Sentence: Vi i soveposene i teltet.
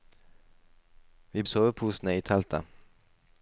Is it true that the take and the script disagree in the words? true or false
false